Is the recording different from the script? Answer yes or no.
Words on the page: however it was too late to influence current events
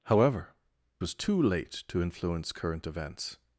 yes